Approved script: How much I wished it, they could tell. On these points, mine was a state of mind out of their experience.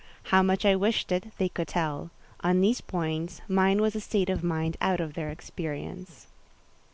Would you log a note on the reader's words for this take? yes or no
no